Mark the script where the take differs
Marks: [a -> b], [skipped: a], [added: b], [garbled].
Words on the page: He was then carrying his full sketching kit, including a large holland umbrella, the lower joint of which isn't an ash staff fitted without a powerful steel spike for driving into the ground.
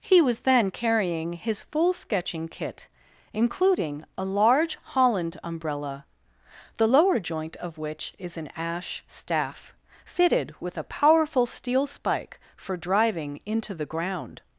He was then carrying his full sketching kit, including a large holland umbrella, the lower joint of which [isn't -> is] an ash staff fitted [without -> with] a powerful steel spike for driving into the ground.